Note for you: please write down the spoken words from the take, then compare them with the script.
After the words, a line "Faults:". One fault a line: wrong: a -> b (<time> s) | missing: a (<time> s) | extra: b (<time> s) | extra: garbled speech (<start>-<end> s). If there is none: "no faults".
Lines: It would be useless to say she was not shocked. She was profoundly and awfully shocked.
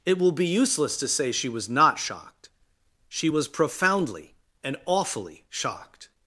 It will be useless to say she was not shocked. She was profoundly and awfully shocked.
Faults:
wrong: would -> will (0.2 s)